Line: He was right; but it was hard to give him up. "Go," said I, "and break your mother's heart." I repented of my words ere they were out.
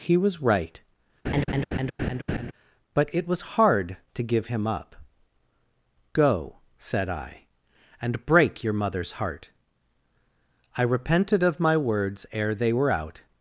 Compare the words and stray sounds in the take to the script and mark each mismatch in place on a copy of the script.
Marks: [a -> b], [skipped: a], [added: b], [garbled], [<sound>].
He was right; [laugh] but it was hard to give him up. "Go," said I, "and break your mother's heart." I repented of my words ere they were out.